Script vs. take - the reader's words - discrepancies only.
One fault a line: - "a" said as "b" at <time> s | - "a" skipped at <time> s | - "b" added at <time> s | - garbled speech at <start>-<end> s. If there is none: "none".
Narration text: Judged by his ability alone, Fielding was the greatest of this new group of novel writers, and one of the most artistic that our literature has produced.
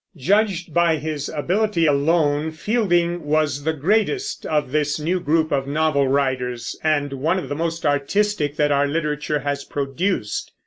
none